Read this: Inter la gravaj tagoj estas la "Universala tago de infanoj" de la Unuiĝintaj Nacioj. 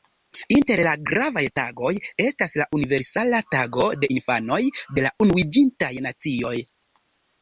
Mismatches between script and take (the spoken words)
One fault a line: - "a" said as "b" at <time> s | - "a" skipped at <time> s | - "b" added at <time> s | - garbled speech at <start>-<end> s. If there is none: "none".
none